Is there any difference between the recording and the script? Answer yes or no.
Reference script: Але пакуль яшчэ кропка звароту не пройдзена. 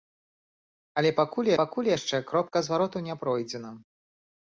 yes